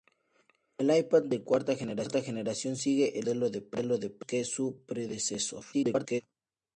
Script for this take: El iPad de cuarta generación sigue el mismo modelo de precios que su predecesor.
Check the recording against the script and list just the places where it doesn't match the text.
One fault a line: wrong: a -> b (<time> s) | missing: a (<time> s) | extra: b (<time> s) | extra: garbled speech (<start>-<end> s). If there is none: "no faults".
extra: garbled speech (5.7-6.2 s)